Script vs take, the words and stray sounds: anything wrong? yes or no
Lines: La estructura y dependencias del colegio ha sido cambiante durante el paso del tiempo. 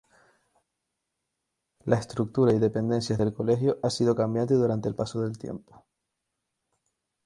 no